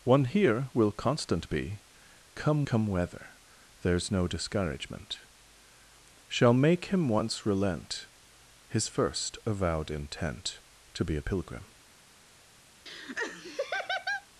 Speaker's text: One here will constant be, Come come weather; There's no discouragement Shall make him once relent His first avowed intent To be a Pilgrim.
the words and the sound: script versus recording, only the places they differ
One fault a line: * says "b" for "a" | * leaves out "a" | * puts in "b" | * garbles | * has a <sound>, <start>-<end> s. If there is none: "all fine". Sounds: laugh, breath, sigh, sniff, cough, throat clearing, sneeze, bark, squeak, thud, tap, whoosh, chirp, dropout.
* has a laugh, 12.9-14.3 s